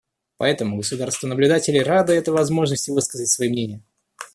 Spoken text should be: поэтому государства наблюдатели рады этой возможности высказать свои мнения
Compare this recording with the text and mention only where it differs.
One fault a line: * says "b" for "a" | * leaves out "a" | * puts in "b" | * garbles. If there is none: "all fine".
all fine